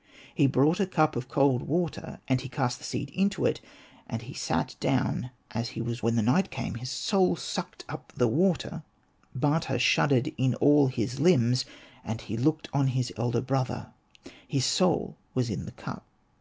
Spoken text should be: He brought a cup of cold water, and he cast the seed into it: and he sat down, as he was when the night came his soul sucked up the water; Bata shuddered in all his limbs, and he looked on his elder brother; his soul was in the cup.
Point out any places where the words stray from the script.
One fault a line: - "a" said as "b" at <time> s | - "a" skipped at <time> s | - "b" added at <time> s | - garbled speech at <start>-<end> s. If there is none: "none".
none